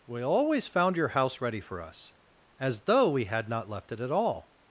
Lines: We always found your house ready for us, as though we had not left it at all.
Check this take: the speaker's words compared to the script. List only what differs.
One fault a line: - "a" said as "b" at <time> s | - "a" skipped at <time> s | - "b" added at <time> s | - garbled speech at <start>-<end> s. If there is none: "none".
none